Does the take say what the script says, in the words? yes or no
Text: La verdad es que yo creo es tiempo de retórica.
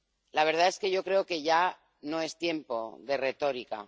no